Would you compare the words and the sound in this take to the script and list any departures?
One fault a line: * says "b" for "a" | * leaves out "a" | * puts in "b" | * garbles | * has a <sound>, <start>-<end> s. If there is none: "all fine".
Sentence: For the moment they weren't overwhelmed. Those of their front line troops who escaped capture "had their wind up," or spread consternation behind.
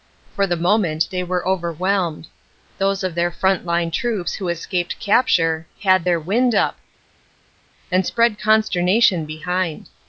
* says "were" for "weren't"
* says "and" for "or"